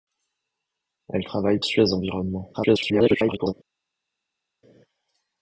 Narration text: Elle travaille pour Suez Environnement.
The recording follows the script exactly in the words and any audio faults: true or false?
false